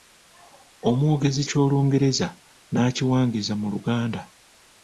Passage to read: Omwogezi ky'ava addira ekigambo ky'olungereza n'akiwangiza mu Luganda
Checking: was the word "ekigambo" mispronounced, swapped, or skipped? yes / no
yes